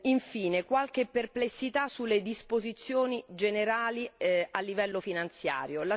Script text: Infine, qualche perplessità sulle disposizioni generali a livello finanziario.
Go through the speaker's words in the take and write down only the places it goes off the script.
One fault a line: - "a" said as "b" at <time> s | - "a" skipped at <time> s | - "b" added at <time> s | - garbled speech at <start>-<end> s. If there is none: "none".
none